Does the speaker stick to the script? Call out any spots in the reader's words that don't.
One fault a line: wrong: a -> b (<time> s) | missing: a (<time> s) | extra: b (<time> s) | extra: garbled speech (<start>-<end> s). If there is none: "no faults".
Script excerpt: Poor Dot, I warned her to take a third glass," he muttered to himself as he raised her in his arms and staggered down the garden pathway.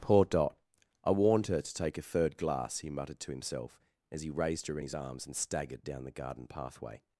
no faults